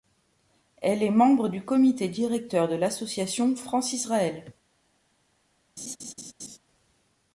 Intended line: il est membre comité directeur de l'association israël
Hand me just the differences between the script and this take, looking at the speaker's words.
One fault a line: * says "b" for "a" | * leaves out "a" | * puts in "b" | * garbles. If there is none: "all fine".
* says "elle" for "il"
* puts in "du"
* puts in "france"